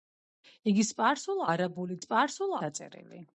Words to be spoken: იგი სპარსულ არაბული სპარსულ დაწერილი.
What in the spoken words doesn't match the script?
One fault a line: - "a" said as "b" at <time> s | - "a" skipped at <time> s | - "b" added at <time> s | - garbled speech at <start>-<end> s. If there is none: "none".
none